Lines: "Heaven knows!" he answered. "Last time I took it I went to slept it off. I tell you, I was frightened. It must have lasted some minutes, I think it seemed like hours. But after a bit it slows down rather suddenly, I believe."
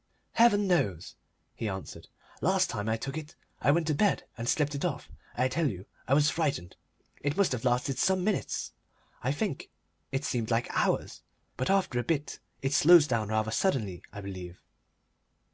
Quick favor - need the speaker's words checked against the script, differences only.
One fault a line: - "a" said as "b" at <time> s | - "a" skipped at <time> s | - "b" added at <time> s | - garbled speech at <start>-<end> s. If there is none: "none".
- "bed and" added at 3.9 s